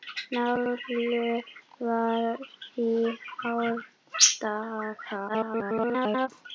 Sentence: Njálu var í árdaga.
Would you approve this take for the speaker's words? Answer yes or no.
no